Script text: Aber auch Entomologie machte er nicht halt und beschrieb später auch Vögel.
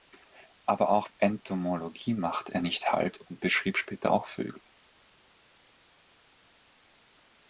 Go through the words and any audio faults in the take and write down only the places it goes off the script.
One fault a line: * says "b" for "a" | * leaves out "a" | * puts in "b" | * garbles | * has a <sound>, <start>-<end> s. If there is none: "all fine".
all fine